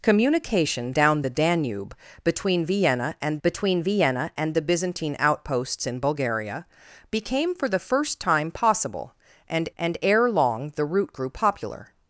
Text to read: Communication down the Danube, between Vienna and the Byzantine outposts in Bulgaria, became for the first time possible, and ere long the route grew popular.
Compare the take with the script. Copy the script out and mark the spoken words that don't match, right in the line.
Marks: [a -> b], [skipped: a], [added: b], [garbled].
Communication down the Danube, between Vienna and [added: between Vienna and] the Byzantine outposts in Bulgaria, became for the first time possible, and [added: and] ere long the route grew popular.